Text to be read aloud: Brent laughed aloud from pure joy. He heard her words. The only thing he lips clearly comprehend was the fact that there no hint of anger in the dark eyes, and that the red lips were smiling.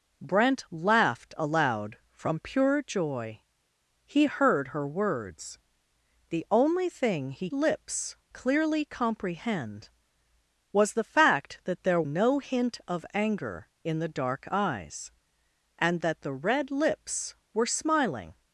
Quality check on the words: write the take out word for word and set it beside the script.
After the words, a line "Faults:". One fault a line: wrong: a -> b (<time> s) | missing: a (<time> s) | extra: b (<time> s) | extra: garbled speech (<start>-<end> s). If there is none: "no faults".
Brent laughed aloud from pure joy. He heard her words. The only thing he lips clearly comprehend was the fact that there no hint of anger in the dark eyes, and that the red lips were smiling.
Faults:
no faults